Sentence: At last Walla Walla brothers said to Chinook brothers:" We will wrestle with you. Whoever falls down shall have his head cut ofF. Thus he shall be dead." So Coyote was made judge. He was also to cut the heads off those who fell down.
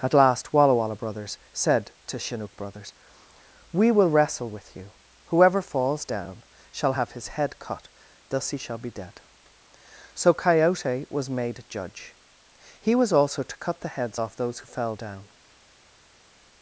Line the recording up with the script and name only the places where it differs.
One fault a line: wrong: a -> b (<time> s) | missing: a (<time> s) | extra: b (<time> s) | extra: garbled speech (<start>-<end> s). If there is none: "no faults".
missing: ofF (7.9 s)